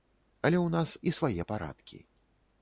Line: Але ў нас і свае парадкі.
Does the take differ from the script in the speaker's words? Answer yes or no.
no